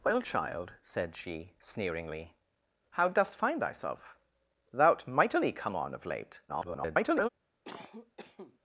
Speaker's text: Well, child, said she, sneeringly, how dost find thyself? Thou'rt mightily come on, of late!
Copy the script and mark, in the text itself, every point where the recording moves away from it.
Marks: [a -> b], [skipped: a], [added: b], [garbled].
Well, child, said she, sneeringly, how dost find thyself? Thou'rt mightily come on, of late! [garbled]